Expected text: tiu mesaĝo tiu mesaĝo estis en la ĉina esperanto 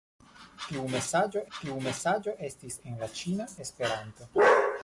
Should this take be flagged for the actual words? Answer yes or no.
no